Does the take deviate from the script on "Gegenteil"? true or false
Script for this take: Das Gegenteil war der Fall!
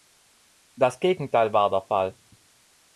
false